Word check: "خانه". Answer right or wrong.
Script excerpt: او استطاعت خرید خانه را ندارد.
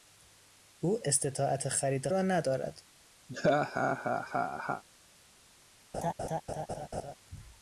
wrong